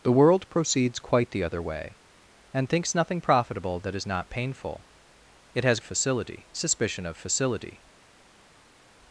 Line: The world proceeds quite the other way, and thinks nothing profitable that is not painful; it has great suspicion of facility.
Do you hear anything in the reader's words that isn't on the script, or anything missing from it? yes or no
yes